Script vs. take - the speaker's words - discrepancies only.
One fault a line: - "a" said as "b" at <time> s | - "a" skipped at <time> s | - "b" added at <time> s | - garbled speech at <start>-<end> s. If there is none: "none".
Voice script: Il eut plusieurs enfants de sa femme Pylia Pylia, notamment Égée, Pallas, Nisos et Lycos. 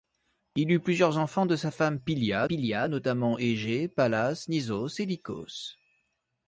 none